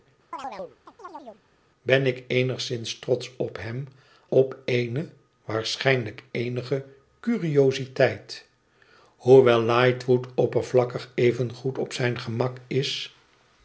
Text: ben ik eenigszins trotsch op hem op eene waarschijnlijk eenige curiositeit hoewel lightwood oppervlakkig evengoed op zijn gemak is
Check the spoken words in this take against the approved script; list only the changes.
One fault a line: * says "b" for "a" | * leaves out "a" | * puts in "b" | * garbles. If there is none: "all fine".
all fine